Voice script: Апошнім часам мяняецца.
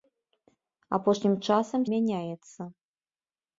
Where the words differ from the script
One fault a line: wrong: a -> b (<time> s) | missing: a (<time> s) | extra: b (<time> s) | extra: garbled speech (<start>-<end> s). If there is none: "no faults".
no faults